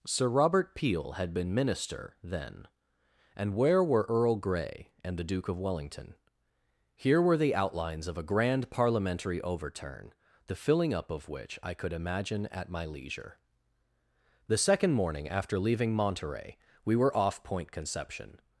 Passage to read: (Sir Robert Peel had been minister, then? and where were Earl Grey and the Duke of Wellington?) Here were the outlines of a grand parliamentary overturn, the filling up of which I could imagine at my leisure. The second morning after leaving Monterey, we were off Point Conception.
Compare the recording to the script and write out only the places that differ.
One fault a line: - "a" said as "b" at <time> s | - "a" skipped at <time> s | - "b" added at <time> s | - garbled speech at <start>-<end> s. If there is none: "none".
none